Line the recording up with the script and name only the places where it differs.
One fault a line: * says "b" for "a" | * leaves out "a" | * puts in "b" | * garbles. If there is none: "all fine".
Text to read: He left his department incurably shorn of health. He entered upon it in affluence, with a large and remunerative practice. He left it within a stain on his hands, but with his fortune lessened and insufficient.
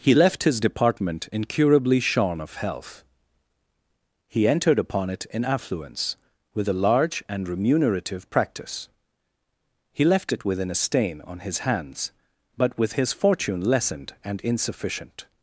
all fine